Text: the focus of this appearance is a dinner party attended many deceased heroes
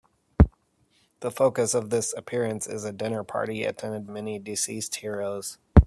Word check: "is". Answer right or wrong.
right